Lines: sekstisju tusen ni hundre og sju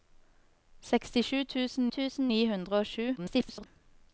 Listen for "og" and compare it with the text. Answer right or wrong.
right